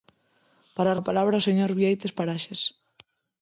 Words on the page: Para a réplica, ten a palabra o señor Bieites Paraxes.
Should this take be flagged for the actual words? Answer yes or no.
yes